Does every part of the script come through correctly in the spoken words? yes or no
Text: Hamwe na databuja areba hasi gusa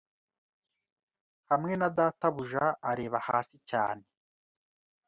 no